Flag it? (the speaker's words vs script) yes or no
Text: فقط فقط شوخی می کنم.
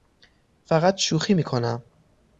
yes